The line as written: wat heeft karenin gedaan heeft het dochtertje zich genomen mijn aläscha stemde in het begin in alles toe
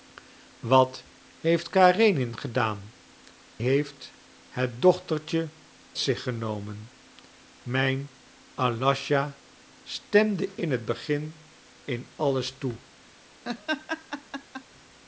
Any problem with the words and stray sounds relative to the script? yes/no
yes